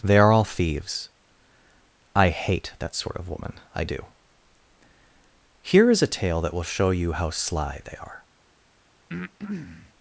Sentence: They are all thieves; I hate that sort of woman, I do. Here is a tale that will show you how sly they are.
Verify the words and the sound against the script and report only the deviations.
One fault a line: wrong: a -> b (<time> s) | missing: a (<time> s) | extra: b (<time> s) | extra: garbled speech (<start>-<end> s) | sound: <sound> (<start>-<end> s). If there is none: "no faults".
sound: breath (9.1-9.9 s)